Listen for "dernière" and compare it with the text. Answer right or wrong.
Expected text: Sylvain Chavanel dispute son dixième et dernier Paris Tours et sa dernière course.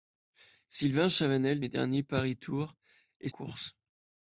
wrong